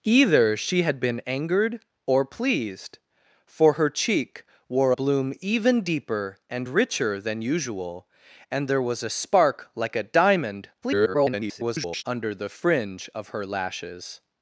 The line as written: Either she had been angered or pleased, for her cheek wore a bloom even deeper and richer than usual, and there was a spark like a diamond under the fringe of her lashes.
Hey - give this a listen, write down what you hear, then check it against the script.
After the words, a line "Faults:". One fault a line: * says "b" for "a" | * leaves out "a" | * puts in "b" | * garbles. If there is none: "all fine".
Either she had been angered or pleased, for her cheek wore bloom even deeper and richer than usual, and there was a spark like a diamond [garbled] under the fringe of her lashes.
Faults:
* leaves out "a"
* garbles